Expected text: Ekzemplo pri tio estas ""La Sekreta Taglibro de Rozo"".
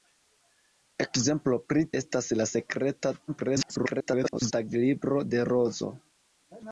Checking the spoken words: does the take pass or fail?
fail